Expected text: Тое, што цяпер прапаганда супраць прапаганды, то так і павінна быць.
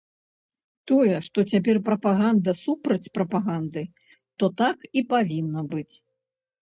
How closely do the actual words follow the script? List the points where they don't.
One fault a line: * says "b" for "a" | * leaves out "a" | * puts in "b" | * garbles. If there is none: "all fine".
all fine